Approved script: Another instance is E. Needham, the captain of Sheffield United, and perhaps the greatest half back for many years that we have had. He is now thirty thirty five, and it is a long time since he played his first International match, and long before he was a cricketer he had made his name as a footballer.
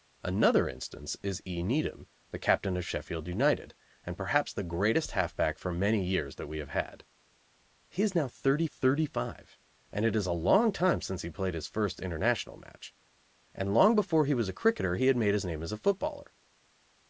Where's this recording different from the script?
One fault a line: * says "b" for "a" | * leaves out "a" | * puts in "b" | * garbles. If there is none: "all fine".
all fine